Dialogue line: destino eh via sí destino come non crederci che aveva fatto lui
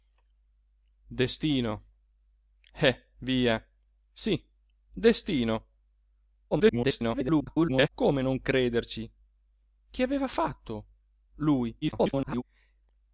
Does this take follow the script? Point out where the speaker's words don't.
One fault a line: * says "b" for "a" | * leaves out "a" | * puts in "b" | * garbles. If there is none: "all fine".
* garbles
* garbles